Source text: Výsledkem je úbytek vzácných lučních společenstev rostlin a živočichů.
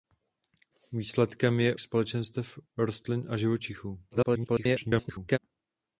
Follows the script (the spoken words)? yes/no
no